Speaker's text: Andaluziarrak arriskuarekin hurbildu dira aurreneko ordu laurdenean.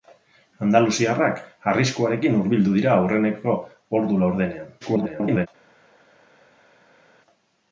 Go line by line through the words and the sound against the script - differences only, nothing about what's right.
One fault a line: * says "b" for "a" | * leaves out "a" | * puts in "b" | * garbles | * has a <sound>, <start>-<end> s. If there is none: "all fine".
* garbles